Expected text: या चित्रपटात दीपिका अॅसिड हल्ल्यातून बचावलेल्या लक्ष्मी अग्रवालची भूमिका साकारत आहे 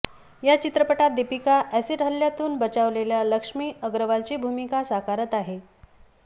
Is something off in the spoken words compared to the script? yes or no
no